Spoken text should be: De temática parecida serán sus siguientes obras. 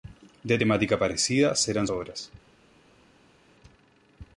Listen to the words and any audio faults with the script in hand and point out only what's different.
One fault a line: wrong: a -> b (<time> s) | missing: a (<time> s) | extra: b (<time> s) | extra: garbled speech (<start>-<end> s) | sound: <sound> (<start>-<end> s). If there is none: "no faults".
missing: sus siguientes (1.9 s)